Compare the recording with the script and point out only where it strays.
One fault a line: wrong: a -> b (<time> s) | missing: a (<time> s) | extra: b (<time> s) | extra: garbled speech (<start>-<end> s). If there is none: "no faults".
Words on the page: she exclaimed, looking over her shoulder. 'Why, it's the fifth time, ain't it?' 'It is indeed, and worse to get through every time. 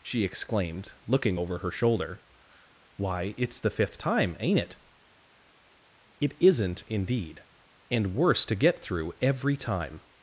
wrong: is -> isn't (6.4 s)